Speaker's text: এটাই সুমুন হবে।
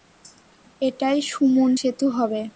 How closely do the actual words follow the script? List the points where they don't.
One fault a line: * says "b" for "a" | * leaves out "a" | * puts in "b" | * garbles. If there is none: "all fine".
* puts in "সেতু"